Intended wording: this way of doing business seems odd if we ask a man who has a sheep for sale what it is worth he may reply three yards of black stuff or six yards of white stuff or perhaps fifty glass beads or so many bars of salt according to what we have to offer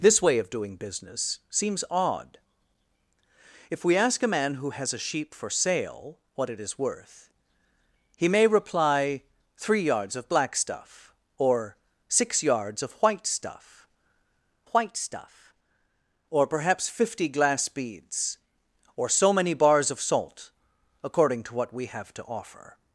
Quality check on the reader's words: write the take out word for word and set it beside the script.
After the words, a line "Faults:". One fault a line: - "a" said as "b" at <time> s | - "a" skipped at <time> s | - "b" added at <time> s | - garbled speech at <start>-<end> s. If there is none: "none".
this way of doing business seems odd if we ask a man who has a sheep for sale what it is worth he may reply three yards of black stuff or six yards of white stuff white stuff or perhaps fifty glass beads or so many bars of salt according to what we have to offer
Faults:
- "white stuff" added at 14.7 s